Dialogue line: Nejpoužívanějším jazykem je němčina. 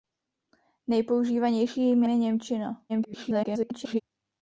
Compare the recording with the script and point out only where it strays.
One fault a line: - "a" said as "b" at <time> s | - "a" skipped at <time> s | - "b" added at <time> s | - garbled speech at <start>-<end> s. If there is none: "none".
- "jazykem" skipped at 2.0 s
- garbled speech at 2.9-4.0 s